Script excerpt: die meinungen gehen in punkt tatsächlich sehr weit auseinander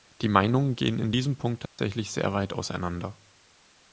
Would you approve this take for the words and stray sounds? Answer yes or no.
no